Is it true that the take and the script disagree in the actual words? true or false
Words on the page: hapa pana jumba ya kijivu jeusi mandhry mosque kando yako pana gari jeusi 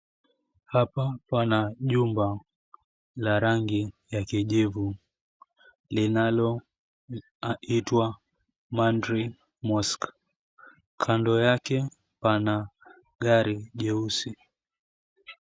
true